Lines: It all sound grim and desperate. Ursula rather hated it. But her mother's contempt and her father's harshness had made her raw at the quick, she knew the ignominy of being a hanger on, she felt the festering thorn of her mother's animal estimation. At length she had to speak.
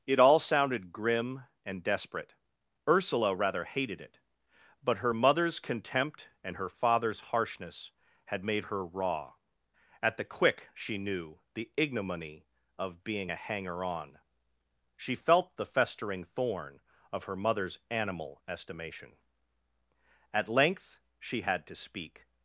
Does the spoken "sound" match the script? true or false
false